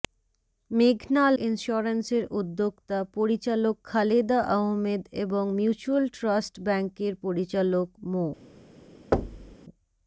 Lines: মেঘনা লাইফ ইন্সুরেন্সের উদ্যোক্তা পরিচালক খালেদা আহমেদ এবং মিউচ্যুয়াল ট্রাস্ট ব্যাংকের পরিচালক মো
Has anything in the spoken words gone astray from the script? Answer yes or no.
yes